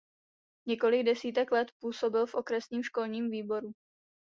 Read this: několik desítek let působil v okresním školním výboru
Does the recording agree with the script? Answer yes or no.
yes